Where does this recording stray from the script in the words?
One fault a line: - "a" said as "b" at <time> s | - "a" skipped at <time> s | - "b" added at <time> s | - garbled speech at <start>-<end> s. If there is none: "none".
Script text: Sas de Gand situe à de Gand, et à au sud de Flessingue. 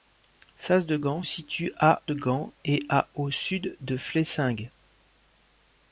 none